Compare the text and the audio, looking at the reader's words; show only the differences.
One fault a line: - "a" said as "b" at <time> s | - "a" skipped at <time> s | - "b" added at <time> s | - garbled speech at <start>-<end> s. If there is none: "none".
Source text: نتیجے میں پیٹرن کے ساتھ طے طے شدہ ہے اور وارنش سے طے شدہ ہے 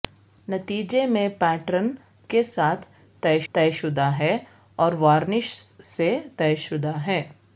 none